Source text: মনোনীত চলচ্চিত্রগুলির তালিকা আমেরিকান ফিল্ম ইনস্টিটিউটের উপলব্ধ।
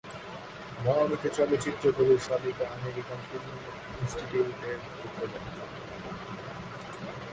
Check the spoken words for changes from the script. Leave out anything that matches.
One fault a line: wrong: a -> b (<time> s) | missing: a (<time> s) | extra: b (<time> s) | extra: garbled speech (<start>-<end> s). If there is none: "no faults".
no faults